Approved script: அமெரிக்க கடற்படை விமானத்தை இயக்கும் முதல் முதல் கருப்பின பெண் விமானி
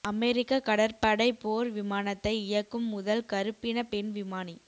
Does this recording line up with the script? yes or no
no